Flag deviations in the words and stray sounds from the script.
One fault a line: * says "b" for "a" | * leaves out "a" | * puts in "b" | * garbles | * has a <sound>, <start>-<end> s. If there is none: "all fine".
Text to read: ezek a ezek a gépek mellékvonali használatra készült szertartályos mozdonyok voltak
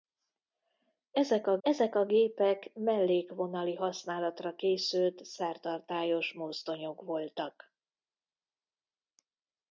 all fine